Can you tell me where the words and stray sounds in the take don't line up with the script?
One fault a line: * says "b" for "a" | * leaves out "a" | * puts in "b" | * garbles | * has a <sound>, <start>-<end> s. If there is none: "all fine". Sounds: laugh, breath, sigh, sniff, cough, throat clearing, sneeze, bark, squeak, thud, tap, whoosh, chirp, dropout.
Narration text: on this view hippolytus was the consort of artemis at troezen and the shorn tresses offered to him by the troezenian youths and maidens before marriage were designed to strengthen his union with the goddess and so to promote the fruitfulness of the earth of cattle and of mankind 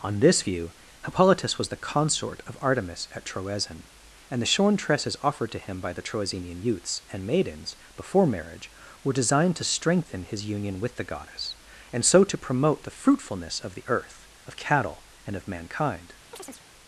* has a chirp, 16.3-16.6 s